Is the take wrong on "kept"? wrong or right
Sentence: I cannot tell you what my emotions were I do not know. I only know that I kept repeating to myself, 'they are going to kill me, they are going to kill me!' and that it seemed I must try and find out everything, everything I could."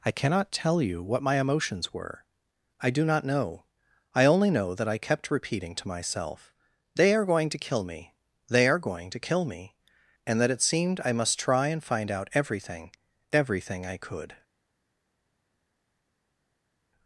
right